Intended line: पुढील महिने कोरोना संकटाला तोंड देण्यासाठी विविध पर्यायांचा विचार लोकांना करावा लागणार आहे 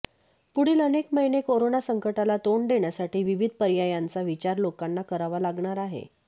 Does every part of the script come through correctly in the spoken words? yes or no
no